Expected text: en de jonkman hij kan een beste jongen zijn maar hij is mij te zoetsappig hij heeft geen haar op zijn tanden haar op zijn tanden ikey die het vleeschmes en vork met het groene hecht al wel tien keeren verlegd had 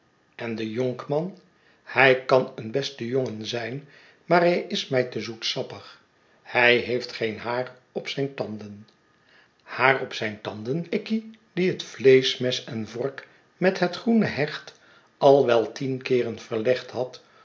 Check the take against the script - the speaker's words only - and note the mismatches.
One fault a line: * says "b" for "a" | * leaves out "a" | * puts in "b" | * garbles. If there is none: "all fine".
all fine